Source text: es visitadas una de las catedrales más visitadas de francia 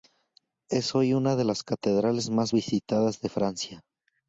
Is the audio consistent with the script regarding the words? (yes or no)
no